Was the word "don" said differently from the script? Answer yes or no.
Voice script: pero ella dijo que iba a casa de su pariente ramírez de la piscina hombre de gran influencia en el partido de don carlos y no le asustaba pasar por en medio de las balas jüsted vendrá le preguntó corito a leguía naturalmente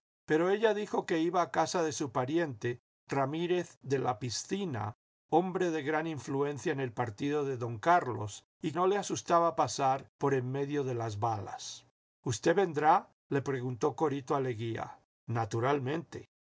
no